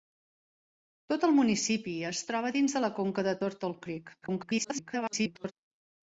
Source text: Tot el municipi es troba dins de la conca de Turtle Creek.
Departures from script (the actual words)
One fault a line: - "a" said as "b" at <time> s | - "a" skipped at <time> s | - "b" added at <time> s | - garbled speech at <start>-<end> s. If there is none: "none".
- garbled speech at 4.2-5.5 s